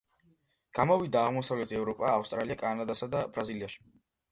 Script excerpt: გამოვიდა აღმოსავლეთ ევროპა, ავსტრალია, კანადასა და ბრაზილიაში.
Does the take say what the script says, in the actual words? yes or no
yes